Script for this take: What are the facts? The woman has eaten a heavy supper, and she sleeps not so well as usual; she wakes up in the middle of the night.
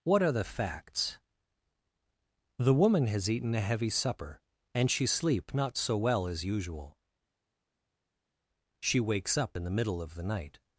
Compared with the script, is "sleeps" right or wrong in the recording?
wrong